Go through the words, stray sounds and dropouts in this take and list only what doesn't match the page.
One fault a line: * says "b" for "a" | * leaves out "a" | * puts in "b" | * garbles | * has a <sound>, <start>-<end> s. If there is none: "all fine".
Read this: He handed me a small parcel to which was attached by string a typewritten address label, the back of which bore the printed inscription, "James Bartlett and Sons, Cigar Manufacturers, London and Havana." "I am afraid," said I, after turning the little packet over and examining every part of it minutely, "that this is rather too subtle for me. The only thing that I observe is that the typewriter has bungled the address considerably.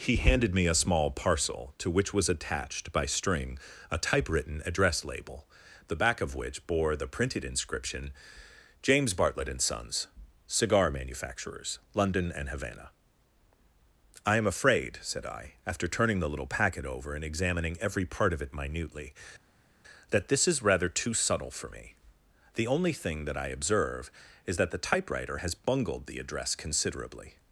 all fine